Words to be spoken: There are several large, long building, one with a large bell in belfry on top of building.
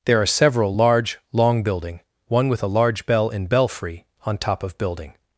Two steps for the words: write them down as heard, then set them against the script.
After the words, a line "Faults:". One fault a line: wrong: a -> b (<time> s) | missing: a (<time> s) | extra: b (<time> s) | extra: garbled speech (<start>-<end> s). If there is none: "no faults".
There are several large, long building, one with a large bell in belfry on top of building.
Faults:
no faults